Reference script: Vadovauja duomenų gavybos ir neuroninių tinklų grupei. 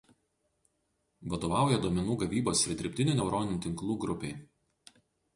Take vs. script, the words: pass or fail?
fail